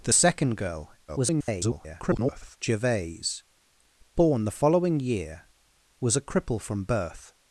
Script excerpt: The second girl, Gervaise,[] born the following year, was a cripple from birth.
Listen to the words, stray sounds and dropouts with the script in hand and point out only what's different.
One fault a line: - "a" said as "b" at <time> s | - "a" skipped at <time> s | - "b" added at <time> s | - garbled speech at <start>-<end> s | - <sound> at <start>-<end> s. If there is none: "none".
- garbled speech at 1.1-2.6 s